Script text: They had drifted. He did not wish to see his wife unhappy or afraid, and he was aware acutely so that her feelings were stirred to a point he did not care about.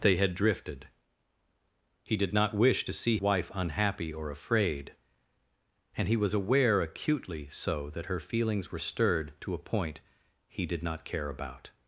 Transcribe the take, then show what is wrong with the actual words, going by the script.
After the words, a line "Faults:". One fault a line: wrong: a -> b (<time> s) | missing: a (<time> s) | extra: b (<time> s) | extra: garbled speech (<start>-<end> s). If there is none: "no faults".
They had drifted. He did not wish to see wife unhappy or afraid, and he was aware acutely so that her feelings were stirred to a point he did not care about.
Faults:
missing: his (3.2 s)